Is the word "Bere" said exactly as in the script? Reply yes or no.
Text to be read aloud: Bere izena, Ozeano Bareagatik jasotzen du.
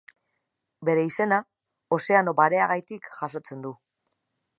yes